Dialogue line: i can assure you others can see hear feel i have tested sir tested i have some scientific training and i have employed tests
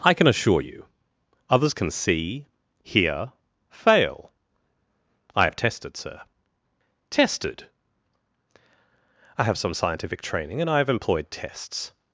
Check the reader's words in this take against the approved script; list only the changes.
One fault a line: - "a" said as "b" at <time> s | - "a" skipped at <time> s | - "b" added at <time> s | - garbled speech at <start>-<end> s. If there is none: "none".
- "feel" said as "fail" at 3.7 s